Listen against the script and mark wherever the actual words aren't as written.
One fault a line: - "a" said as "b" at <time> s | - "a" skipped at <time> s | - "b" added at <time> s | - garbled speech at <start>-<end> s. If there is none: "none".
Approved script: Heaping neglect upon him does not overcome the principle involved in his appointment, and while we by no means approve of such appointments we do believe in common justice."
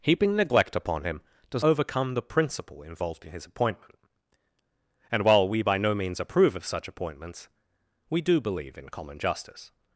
- "not" skipped at 1.6 s